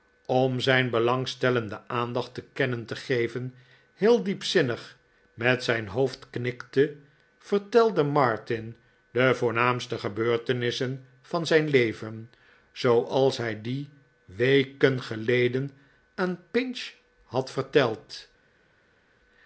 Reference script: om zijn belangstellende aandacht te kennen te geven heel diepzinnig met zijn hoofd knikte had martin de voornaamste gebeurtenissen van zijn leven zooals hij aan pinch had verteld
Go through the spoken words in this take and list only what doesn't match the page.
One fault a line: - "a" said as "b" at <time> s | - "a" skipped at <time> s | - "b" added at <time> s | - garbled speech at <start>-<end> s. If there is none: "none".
- "had" said as "vertelde" at 7.4 s
- "die weken geleden" added at 13.6 s